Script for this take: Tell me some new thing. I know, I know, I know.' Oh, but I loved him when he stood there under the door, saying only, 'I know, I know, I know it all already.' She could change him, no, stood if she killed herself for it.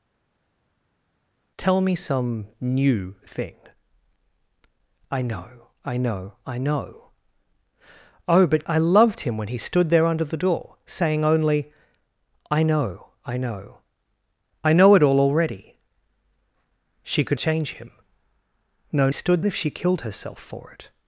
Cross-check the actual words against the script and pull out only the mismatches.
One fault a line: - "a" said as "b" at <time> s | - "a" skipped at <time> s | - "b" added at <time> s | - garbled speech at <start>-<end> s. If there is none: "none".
none